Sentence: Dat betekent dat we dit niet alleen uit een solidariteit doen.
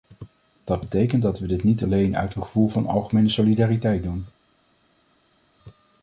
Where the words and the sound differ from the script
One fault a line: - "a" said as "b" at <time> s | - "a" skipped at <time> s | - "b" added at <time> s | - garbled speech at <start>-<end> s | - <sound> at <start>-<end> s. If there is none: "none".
- "gevoel van algemene" added at 2.4 s